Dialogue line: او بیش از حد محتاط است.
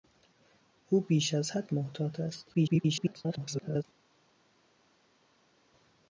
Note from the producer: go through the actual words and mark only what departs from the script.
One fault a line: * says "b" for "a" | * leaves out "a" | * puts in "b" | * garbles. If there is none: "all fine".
* garbles